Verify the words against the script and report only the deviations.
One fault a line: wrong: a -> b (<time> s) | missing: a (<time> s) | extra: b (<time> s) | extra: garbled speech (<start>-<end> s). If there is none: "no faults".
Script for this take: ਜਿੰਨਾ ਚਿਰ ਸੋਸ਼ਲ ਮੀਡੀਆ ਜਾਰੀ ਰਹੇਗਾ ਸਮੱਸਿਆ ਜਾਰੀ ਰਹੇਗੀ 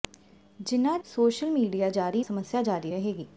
missing: ਚਿਰ (1.0 s)
missing: ਰਹੇਗਾ (2.2 s)